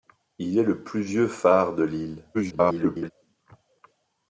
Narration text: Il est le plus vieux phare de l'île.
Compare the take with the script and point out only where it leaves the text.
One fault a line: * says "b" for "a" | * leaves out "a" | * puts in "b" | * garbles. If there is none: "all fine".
* garbles